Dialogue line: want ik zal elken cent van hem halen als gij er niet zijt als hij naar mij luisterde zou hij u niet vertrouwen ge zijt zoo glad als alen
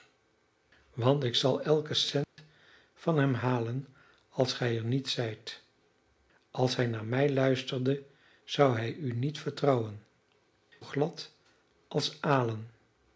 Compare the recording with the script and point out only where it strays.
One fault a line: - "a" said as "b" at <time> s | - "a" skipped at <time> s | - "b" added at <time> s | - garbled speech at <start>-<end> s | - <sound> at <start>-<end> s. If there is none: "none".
- dropout at 2.2-2.4 s
- "ge zijt zoo" skipped at 10.0 s